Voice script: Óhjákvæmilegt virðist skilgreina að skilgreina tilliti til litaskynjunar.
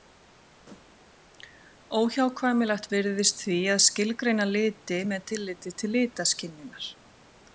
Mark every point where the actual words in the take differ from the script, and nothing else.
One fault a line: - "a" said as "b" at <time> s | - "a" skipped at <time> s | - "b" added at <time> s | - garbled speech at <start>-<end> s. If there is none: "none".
- "skilgreina" said as "því" at 3.5 s
- "liti með" added at 4.5 s